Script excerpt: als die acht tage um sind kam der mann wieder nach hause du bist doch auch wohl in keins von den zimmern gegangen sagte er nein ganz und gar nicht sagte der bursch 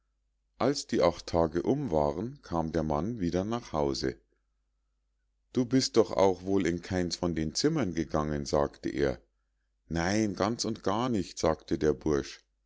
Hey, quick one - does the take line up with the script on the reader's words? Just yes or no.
no